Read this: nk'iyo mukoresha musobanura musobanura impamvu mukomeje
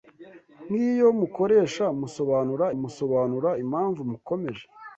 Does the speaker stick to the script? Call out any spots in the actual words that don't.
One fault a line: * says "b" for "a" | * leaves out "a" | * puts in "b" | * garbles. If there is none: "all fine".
all fine